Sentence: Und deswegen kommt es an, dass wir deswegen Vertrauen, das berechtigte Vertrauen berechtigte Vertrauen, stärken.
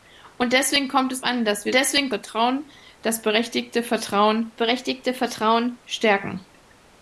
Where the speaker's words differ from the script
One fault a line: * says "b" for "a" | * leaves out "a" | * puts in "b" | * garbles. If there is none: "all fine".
all fine